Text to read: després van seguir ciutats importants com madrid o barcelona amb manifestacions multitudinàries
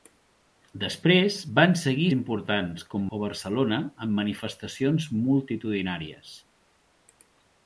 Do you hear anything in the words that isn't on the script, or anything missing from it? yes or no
yes